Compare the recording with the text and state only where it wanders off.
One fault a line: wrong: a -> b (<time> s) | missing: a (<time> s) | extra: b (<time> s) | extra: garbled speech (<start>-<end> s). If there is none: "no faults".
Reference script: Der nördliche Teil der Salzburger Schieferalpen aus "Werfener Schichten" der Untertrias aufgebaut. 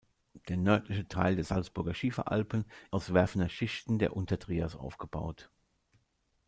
no faults